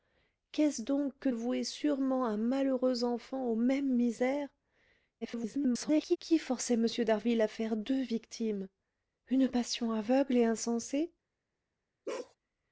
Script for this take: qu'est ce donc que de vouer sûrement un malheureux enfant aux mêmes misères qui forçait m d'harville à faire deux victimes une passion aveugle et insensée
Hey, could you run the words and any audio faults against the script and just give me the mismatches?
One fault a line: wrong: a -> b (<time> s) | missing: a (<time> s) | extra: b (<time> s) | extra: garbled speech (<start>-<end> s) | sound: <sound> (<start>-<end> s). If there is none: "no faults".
missing: de (1.3 s)
extra: garbled speech (5.2-6.2 s)
sound: bark (12.1-12.4 s)